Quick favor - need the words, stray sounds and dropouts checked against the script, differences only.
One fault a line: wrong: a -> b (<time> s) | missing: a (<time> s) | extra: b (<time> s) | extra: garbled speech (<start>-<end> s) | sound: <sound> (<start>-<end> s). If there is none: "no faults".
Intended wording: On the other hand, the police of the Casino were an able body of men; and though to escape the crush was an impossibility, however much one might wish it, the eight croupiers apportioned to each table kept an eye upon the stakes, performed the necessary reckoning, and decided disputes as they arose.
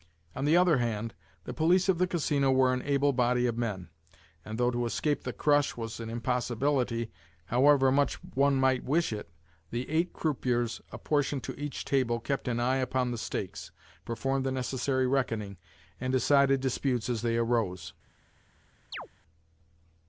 sound: chirp (18.9-19.1 s)